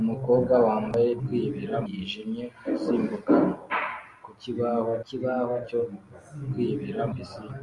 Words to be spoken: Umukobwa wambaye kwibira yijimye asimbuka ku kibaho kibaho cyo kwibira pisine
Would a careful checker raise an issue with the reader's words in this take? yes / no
no